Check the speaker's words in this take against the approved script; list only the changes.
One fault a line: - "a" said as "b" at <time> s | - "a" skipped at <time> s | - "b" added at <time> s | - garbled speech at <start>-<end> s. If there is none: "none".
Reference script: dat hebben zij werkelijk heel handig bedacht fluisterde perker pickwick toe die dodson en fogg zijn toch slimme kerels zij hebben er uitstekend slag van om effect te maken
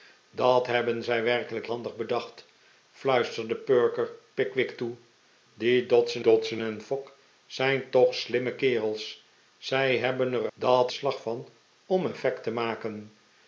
- "heel" skipped at 1.7 s
- "dodson" added at 6.2 s
- "uitstekend" said as "dat" at 10.5 s